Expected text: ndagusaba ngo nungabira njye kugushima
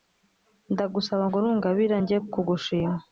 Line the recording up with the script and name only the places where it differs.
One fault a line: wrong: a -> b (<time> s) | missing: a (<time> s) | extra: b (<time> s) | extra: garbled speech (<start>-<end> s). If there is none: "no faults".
no faults